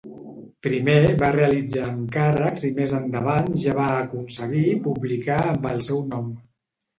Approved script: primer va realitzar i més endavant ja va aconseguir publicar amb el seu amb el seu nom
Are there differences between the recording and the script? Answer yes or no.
yes